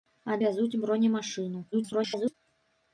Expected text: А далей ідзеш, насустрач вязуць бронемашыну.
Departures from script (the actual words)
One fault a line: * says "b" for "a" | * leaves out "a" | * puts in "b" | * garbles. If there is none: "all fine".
* leaves out "далей ідзеш насустрач"
* garbles